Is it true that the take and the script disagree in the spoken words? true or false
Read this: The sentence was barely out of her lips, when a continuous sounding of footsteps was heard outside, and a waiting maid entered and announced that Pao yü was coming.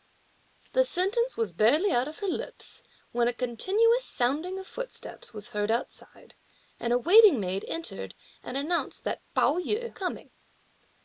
true